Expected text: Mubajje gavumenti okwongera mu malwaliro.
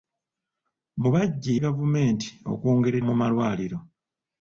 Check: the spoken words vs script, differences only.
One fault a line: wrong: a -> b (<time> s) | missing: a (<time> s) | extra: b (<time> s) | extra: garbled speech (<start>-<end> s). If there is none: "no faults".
no faults